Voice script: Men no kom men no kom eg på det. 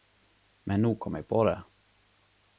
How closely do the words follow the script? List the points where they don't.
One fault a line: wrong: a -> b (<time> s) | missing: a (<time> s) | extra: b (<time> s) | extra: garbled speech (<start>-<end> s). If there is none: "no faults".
missing: men no kom (1.1 s)